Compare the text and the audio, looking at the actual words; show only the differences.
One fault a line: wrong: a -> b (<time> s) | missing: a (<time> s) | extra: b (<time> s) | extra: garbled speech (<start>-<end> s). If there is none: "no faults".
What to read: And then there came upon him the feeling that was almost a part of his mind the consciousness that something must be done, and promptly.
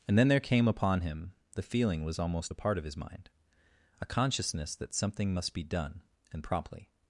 missing: that (2.0 s)
wrong: the -> a (4.0 s)